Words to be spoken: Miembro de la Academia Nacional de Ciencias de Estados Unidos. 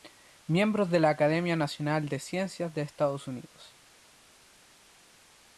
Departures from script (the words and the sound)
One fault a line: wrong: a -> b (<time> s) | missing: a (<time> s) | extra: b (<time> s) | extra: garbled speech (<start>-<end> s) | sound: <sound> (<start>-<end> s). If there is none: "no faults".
no faults